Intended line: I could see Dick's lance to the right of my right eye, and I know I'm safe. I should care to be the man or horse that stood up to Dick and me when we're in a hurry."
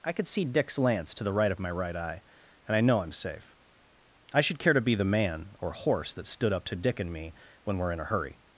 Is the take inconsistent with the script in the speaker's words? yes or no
no